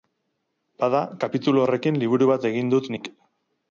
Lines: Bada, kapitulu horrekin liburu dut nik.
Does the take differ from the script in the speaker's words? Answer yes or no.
yes